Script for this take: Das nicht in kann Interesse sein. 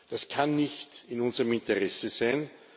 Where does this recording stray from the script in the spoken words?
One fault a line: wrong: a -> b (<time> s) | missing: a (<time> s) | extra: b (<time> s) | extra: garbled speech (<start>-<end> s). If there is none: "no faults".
extra: kann (0.3 s)
wrong: kann -> unserem (1.2 s)